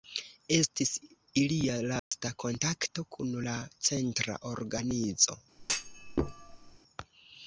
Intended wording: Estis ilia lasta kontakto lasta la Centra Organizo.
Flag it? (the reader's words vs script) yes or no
yes